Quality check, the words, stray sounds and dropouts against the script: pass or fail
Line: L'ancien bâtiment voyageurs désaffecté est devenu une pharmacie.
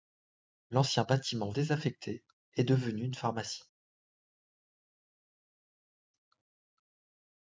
fail